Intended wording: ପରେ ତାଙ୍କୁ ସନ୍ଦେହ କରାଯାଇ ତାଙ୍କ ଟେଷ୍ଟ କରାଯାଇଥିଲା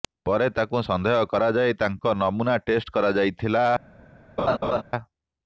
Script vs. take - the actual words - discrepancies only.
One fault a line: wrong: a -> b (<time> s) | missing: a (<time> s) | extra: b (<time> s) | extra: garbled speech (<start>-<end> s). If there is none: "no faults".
extra: ନମୁନା (2.2 s)